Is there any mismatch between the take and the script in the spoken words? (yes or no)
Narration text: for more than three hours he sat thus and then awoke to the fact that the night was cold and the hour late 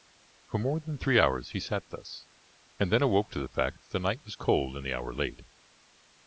no